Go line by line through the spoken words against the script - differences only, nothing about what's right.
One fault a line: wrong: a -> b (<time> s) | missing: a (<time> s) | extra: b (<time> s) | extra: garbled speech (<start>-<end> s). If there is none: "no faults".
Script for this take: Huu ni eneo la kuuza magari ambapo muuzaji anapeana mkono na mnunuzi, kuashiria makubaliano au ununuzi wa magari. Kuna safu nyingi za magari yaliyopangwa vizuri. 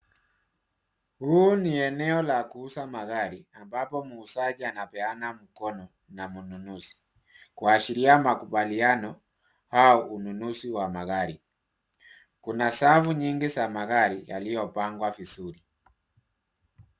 no faults